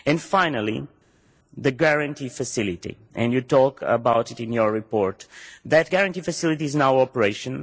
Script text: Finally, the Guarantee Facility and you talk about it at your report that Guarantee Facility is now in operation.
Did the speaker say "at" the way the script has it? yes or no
no